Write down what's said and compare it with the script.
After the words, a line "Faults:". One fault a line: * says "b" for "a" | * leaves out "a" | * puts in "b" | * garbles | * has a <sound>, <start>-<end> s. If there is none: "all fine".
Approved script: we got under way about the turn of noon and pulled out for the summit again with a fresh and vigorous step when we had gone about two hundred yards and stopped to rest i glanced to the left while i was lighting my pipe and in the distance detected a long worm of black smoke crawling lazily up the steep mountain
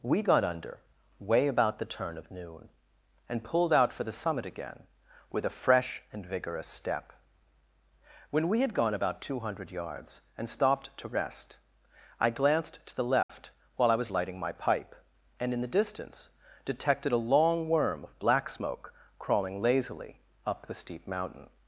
we got under way about the turn of noon and pulled out for the summit again with a fresh and vigorous step when we had gone about two hundred yards and stopped to rest i glanced to the left while i was lighting my pipe and in the distance detected a long worm of black smoke crawling lazily up the steep mountain
Faults:
* has a dropout, 13.2-13.3 s